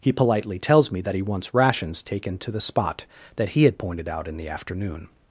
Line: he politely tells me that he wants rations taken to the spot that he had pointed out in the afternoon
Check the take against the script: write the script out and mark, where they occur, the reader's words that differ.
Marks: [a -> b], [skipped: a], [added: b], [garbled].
he politely tells me that he wants rations taken to the spot that he had pointed out in the afternoon